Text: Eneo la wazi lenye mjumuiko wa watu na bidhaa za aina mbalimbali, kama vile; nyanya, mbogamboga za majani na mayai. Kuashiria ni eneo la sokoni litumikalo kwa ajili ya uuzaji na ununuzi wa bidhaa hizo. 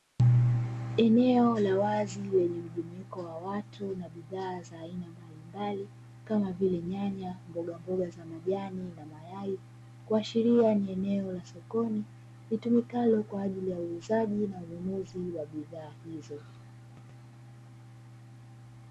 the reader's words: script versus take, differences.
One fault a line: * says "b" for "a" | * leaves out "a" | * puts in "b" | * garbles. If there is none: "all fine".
all fine